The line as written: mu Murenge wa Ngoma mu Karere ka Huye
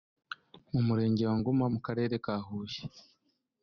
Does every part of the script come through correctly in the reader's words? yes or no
yes